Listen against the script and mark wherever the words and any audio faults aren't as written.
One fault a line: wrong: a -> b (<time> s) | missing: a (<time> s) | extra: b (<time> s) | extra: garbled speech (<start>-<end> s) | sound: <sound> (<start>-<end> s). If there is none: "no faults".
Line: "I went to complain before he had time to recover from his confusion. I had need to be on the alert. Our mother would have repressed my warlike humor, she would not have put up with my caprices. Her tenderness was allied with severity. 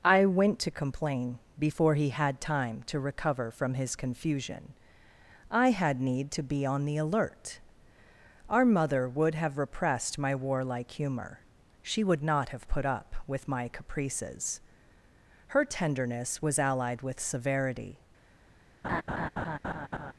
sound: laugh (18.8-20.1 s)